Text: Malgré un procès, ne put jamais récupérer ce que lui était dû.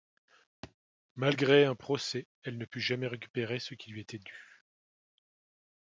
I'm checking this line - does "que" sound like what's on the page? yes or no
no